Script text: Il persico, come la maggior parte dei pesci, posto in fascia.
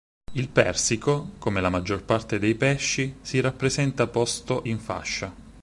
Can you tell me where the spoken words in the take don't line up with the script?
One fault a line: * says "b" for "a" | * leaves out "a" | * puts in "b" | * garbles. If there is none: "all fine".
* puts in "si rappresenta"